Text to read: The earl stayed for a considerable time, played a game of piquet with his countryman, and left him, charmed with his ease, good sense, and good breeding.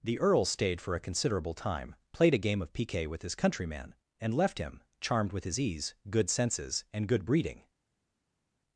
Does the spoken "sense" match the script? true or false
false